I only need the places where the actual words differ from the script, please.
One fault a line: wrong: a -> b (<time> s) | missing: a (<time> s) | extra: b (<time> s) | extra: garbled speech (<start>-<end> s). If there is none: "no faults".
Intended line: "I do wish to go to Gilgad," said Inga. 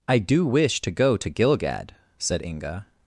no faults